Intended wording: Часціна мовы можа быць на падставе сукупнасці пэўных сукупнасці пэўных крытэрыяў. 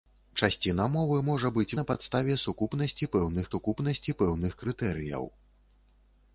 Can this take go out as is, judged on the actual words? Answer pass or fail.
pass